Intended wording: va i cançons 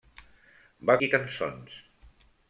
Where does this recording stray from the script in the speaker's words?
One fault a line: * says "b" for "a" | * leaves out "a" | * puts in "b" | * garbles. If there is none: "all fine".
all fine